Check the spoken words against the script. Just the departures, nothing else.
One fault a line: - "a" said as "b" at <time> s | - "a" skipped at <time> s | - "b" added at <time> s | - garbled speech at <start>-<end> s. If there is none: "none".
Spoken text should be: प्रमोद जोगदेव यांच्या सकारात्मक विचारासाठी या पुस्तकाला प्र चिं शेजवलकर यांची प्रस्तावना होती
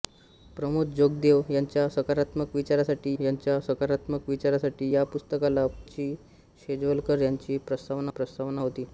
- "यांच्या सकारात्मक विचारासाठी" added at 3.2 s
- "प्र" skipped at 5.7 s
- "प्रस्तावना" added at 8.1 s